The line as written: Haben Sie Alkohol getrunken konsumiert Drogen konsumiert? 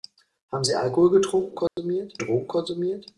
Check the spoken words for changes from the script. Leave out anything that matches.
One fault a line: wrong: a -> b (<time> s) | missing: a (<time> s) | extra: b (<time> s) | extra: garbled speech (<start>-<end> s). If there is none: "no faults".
no faults